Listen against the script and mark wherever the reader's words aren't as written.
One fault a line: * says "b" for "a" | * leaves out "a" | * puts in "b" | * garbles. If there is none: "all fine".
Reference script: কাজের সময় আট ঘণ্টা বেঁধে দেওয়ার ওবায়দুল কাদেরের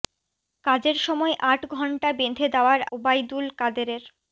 all fine